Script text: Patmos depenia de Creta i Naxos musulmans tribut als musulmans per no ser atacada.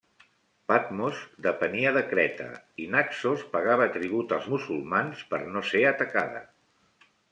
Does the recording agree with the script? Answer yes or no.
no